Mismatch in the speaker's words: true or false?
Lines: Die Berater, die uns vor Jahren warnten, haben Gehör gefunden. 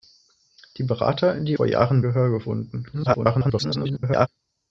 true